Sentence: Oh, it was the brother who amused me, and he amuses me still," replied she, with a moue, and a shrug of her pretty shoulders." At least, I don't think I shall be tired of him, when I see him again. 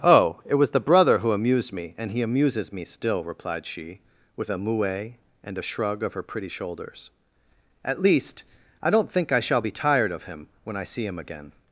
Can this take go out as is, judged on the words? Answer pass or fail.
pass